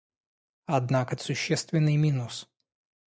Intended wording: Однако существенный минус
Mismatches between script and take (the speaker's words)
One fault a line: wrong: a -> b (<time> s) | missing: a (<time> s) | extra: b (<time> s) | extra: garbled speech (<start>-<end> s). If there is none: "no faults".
no faults